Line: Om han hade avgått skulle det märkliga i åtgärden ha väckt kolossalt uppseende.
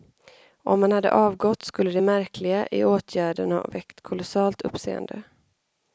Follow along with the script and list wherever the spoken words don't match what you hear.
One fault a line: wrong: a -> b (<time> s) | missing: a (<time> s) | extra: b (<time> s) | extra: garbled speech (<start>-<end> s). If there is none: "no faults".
no faults